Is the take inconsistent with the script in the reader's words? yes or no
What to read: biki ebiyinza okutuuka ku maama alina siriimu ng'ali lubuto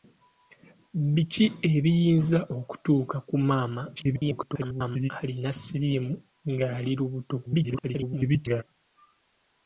yes